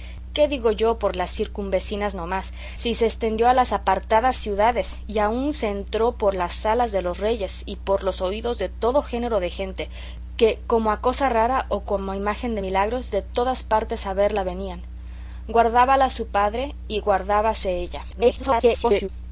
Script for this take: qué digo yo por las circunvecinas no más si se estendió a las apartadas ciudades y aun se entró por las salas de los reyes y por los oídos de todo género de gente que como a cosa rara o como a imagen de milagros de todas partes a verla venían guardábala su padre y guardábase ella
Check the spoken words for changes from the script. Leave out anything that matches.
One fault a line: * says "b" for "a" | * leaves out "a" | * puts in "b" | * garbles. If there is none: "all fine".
* garbles